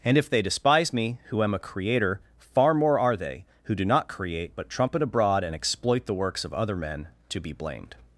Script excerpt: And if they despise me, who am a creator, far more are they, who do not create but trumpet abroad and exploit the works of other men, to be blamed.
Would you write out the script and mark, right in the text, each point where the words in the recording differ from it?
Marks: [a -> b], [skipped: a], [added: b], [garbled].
And if they despise me, who am a creator, far more are they, who do not create but trumpet abroad and exploit the works of other men, to be blamed.